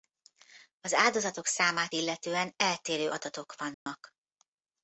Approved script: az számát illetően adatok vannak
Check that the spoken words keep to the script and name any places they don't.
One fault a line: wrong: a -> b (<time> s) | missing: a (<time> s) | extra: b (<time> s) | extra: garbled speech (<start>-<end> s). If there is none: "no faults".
extra: áldozatok (0.9 s)
extra: eltérő (2.6 s)